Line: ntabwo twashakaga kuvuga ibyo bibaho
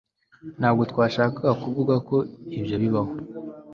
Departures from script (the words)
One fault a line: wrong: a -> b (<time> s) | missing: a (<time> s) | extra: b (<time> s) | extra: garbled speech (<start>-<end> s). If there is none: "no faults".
extra: ko (2.1 s)